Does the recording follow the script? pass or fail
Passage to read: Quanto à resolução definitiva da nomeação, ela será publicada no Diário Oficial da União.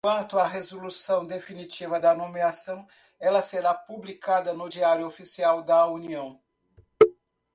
pass